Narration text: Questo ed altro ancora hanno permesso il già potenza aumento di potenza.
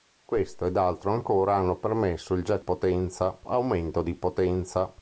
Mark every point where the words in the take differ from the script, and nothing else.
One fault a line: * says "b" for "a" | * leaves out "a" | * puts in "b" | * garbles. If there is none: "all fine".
all fine